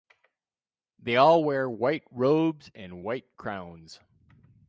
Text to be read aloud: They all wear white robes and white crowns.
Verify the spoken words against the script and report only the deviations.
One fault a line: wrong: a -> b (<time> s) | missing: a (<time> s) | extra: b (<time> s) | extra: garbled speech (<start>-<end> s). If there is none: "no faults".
no faults